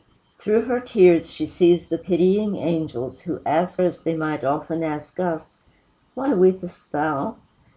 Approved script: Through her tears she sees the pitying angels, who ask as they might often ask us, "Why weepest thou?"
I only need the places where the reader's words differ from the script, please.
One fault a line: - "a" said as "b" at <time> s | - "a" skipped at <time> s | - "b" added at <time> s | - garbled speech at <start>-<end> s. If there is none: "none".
none